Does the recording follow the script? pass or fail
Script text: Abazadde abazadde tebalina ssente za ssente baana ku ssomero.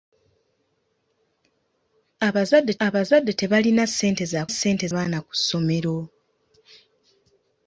pass